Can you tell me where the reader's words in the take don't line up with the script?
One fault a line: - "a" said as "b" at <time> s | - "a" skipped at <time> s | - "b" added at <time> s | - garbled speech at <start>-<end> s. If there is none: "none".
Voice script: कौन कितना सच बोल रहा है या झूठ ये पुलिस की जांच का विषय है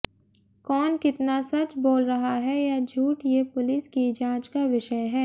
none